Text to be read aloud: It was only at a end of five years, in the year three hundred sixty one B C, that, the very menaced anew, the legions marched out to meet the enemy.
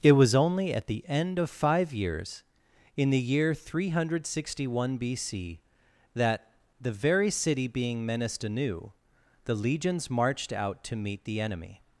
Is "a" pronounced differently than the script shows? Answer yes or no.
yes